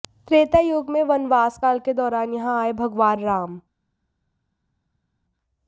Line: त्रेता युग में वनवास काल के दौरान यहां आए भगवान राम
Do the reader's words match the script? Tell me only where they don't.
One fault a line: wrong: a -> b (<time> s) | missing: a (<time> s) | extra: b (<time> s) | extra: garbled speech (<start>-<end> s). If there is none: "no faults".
no faults